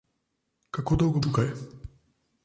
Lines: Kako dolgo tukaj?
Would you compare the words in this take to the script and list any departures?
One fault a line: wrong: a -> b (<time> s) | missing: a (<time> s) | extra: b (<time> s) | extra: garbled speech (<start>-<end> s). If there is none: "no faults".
no faults